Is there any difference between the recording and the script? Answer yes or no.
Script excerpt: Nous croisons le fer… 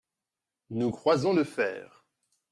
no